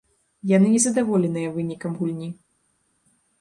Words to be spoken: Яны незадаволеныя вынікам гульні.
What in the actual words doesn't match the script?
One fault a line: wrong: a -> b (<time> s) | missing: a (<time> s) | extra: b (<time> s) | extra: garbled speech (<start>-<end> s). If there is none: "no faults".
no faults